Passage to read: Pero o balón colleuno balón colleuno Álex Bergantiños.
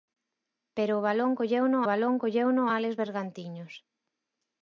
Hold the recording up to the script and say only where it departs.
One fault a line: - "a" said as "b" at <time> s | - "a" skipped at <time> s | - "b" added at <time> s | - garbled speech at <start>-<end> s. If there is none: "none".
none